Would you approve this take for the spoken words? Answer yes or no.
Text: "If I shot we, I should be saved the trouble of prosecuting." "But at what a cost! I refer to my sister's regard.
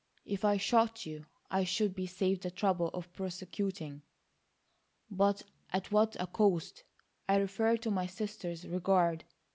no